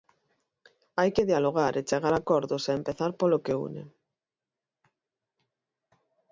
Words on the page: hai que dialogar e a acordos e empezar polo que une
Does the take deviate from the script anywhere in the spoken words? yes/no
yes